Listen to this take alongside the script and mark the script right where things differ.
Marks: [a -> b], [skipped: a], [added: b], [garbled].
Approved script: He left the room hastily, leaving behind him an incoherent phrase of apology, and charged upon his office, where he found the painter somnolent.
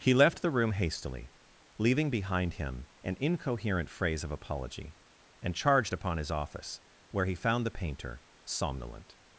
He left the room hastily, leaving behind him an incoherent phrase of apology, and charged upon his office, where he found the painter somnolent.